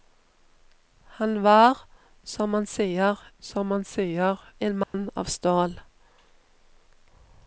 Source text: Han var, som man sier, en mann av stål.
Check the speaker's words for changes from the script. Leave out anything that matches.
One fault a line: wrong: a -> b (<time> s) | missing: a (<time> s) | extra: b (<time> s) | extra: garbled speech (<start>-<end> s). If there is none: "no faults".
extra: som man sier (3.4 s)